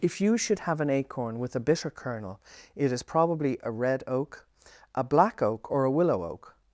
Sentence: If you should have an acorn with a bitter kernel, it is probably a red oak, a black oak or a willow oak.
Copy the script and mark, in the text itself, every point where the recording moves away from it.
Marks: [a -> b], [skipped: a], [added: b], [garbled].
If you should have an acorn with a bitter kernel, it is probably a red oak, a black oak or a willow oak.